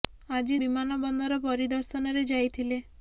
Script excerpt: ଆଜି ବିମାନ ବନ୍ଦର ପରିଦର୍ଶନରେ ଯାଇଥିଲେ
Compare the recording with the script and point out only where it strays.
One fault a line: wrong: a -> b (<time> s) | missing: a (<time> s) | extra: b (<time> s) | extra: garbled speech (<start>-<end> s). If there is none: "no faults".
no faults